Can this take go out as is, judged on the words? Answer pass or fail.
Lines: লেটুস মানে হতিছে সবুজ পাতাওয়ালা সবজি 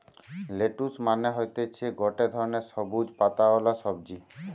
fail